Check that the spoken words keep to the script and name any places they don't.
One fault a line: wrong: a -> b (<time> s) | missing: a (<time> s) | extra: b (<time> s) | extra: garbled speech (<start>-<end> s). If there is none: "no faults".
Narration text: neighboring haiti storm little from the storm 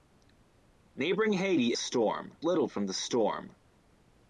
no faults